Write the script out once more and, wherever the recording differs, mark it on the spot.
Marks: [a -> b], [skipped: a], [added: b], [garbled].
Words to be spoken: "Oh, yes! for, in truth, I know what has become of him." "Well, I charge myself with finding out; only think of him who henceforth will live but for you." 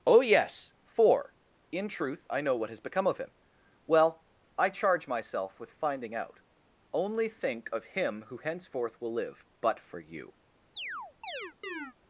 "Oh, yes! for, in truth, I know what has become of him." "Well, I charge myself with finding out; only think of him who henceforth will live but for you."